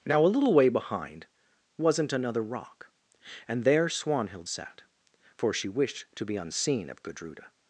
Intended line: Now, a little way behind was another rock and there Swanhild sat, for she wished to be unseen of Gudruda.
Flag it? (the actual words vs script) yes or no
yes